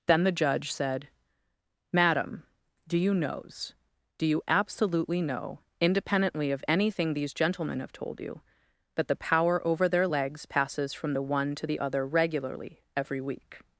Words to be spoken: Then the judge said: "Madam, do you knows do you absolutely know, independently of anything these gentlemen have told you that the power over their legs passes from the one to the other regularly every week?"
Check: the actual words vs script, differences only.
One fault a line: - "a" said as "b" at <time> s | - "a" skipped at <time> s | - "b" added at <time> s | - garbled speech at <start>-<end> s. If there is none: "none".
none